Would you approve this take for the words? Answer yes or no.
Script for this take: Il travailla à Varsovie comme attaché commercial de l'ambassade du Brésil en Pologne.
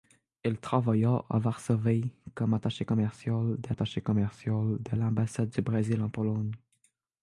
no